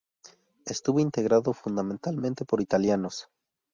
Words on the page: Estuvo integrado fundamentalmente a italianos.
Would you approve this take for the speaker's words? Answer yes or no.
no